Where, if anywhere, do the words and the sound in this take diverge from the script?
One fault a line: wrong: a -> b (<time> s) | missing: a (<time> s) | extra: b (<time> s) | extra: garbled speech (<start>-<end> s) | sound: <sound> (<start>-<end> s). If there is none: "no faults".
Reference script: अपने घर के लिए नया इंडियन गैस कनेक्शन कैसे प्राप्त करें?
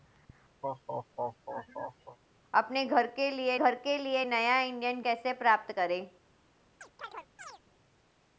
sound: laugh (0.6-2.2 s)
extra: घर के लिए (3.5 s)
missing: गैस कनेक्शन (5.0 s)
sound: chirp (6.8-7.6 s)